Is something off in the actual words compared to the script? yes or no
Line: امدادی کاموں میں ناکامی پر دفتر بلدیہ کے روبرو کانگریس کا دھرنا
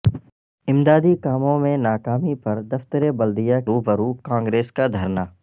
yes